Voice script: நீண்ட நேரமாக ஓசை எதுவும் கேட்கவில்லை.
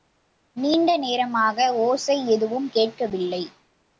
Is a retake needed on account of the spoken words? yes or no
no